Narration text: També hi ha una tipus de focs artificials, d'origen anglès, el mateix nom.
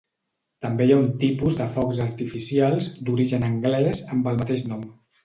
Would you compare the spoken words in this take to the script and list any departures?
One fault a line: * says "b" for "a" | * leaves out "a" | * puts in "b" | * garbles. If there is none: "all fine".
* says "un" for "una"
* puts in "amb"